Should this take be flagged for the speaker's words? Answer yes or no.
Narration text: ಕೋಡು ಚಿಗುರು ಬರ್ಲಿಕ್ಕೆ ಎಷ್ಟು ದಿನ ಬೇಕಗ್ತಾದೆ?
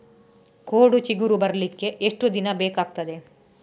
no